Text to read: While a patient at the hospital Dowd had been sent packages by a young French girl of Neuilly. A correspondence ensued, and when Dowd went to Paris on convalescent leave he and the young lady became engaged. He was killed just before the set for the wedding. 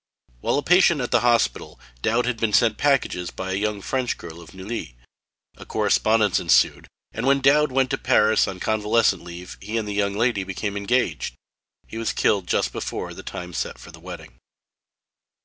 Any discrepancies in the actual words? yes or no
yes